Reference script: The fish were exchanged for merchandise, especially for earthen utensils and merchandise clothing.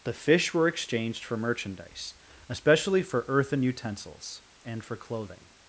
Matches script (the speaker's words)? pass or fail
fail